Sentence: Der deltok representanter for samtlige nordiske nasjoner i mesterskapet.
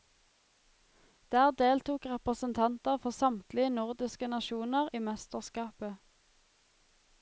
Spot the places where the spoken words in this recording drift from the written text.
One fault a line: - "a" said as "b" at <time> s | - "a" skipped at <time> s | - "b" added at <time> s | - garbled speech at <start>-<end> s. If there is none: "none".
none